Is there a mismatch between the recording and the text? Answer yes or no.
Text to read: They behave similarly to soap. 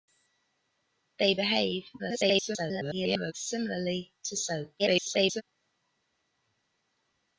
yes